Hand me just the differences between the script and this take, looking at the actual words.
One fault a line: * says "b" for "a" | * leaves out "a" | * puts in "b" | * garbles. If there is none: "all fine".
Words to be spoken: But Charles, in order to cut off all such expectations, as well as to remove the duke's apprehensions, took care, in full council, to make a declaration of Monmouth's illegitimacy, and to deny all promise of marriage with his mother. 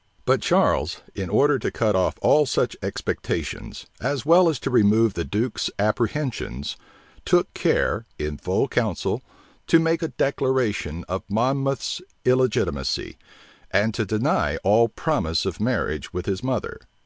all fine